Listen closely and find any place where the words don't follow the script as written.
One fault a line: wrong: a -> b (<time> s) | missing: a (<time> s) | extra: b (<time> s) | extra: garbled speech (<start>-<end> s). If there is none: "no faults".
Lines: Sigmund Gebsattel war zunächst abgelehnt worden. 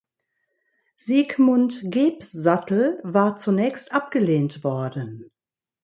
no faults